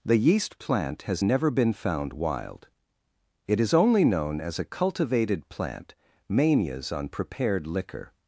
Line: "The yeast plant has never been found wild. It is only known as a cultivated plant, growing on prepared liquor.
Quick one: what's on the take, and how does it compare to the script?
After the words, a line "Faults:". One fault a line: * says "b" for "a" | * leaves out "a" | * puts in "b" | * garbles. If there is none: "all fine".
"The yeast plant has never been found wild. It is only known as a cultivated plant, manias on prepared liquor.
Faults:
* says "manias" for "growing"